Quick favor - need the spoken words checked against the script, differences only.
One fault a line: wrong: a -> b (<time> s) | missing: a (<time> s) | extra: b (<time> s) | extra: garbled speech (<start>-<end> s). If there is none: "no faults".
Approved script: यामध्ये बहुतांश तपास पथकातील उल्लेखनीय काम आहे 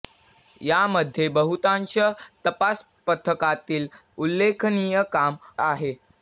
no faults